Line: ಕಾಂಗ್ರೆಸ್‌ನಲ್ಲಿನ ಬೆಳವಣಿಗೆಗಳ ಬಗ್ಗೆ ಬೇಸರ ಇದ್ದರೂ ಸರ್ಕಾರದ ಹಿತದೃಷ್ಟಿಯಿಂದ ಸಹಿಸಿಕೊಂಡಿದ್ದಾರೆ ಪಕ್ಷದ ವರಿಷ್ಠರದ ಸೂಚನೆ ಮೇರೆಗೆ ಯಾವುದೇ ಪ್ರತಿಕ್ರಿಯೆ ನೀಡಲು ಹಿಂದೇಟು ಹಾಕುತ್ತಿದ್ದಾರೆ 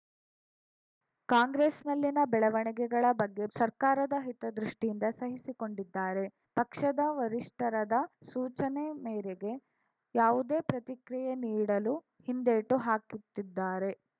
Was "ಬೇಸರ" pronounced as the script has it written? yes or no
no